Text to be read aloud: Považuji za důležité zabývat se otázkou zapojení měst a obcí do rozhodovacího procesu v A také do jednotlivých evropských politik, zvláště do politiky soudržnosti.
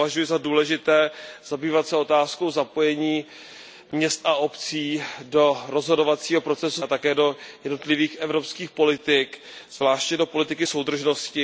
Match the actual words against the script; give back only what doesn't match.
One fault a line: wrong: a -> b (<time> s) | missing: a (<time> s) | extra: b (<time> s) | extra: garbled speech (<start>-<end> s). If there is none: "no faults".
no faults